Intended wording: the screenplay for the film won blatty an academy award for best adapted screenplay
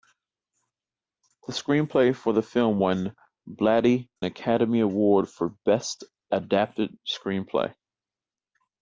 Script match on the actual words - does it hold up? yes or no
no